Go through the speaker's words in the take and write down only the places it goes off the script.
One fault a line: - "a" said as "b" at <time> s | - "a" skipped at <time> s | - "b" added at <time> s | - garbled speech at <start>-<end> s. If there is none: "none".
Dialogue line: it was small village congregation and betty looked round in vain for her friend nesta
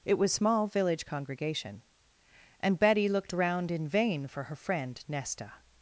none